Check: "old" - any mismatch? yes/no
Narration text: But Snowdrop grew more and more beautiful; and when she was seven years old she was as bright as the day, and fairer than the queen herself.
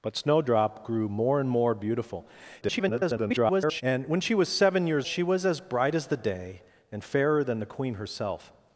yes